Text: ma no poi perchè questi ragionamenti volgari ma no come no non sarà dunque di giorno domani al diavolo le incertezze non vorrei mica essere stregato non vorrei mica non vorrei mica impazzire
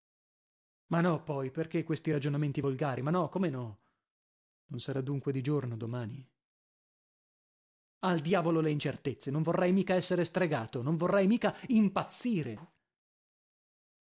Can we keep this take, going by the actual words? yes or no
no